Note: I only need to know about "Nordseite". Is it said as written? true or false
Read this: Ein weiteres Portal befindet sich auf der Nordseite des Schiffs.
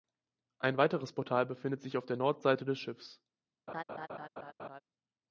true